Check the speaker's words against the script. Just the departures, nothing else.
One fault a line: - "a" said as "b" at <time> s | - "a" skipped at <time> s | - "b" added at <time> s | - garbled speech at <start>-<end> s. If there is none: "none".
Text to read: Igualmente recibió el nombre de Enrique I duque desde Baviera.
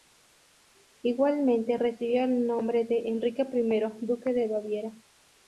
- "desde" said as "de" at 4.3 s